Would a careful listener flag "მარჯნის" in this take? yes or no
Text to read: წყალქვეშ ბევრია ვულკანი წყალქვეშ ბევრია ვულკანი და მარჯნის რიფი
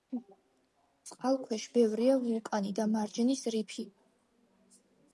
no